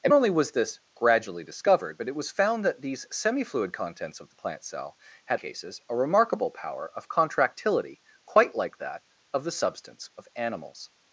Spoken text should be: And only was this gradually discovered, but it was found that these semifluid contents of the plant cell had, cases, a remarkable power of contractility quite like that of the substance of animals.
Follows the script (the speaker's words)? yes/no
yes